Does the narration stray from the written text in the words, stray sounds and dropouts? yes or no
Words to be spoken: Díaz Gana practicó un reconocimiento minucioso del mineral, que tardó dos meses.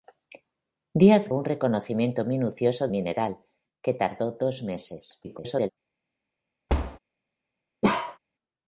yes